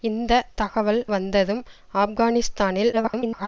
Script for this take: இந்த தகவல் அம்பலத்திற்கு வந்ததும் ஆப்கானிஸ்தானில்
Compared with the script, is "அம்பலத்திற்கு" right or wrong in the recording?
wrong